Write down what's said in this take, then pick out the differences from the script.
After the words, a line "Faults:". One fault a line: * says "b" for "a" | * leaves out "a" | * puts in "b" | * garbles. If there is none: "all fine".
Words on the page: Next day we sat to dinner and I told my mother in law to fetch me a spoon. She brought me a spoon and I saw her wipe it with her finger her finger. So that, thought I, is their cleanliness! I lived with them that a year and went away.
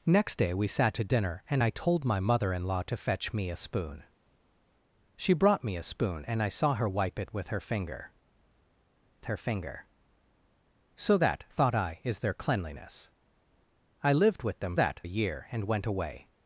Next day we sat to dinner and I told my mother in law to fetch me a spoon. She brought me a spoon and I saw her wipe it with her finger her finger. So that, thought I, is their cleanliness! I lived with them that a year and went away.
Faults:
all fine